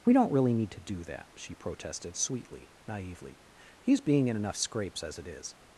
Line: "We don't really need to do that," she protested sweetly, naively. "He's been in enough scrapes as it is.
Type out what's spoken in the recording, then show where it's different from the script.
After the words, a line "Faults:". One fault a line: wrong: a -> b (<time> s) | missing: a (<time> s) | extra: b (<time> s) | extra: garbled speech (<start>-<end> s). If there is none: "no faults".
"We don't really need to do that," she protested sweetly, naively. "He's being in enough scrapes as it is.
Faults:
wrong: been -> being (4.0 s)